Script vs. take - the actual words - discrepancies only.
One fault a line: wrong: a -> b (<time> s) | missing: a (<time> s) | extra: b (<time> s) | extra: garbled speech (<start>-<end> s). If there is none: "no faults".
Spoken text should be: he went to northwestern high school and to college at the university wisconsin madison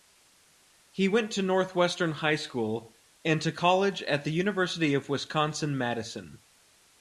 extra: of (5.0 s)